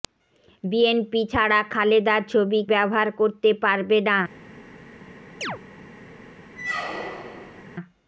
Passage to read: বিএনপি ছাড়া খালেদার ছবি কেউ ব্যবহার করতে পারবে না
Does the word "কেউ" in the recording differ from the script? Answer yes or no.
yes